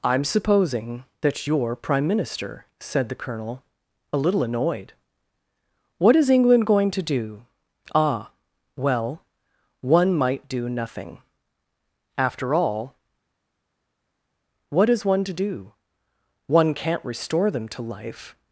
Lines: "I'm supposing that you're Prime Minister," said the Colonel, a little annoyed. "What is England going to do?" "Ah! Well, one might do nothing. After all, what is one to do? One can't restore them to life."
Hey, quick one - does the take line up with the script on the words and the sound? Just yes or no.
yes